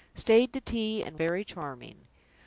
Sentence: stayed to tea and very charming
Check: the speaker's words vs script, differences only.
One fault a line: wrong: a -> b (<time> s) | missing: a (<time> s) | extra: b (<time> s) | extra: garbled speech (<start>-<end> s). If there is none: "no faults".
no faults